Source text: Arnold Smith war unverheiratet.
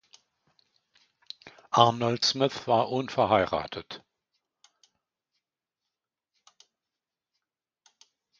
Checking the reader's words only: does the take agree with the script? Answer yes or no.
yes